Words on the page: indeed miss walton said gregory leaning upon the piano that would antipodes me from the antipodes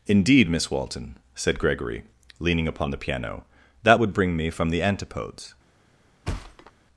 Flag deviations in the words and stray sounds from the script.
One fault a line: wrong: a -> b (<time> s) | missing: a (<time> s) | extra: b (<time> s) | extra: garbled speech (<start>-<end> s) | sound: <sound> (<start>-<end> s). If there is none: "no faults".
wrong: antipodes -> bring (4.1 s)
sound: thud (6.3-6.7 s)